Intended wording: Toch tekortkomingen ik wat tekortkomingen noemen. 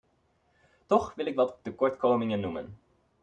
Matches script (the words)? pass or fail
fail